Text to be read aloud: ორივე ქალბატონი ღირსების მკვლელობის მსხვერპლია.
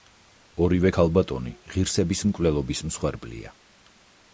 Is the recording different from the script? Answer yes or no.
no